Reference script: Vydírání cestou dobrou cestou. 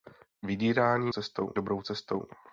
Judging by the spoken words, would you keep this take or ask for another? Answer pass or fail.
pass